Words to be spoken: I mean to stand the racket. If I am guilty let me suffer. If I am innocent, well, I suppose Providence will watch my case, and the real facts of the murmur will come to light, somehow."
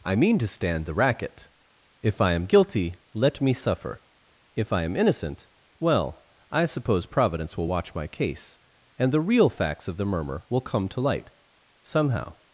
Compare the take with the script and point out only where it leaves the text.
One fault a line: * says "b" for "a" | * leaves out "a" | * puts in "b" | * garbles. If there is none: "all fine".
all fine